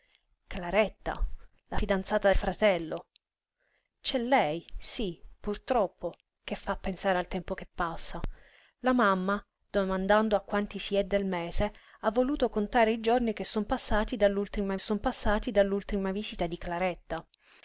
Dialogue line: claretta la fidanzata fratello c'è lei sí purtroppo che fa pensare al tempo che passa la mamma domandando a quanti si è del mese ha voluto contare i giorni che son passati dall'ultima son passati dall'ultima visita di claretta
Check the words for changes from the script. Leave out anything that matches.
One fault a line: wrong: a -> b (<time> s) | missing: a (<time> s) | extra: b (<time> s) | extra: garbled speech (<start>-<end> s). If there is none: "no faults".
no faults